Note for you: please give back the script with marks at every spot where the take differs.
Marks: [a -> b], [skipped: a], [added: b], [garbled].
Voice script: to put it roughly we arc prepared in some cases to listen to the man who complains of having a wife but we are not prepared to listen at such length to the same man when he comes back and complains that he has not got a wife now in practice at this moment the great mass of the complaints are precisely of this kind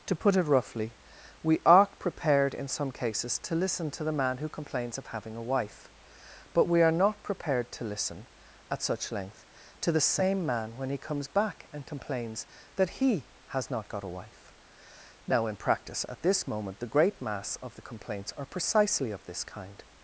to put it roughly we [arc -> are] prepared in some cases to listen to the man who complains of having a wife but we are not prepared to listen at such length to the same man when he comes back and complains that he has not got a wife now in practice at this moment the great mass of the complaints are precisely of this kind